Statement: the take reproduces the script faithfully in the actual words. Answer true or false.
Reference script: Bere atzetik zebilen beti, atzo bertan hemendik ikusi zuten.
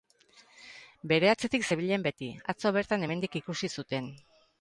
true